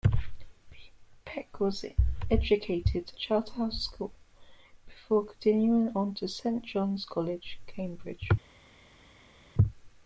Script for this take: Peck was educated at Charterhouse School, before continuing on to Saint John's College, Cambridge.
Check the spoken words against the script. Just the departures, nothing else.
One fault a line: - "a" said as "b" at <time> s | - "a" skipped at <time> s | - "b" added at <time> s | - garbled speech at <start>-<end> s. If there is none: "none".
- "at" skipped at 3.1 s